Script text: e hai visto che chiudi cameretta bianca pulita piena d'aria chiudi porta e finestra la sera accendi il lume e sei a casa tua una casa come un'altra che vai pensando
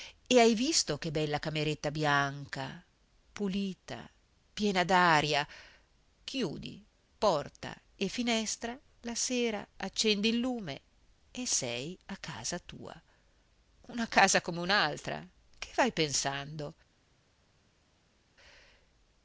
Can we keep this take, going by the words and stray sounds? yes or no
no